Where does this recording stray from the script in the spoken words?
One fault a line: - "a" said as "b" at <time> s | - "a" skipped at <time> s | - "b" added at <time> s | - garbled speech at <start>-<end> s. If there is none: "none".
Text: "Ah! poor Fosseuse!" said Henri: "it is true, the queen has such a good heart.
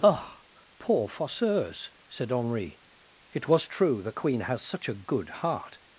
- "is" said as "was" at 3.5 s